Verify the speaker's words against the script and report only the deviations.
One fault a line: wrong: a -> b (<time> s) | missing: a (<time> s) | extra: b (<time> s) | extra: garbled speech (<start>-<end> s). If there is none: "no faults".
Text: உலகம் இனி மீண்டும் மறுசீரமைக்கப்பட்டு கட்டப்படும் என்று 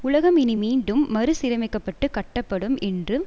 no faults